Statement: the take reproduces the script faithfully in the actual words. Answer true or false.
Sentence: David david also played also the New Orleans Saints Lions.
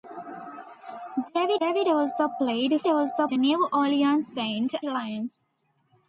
true